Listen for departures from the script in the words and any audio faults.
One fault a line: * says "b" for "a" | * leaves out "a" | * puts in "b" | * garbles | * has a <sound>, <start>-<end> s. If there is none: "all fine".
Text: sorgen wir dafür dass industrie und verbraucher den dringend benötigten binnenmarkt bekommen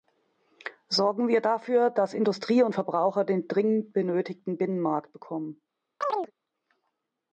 * has a chirp, 6.0-6.3 s